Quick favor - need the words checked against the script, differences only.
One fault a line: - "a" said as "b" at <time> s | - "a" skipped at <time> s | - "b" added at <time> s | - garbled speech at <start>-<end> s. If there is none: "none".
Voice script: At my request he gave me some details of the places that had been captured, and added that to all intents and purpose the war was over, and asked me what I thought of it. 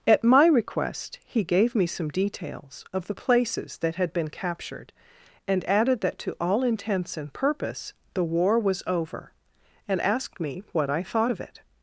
none